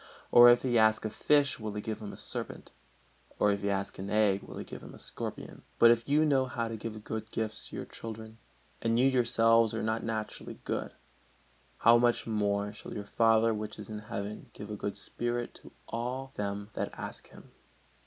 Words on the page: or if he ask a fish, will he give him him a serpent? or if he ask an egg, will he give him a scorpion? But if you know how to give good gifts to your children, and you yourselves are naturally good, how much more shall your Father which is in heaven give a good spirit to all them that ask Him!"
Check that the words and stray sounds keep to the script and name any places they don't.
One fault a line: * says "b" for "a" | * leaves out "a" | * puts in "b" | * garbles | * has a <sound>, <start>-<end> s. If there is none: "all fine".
* leaves out "him"
* puts in "not"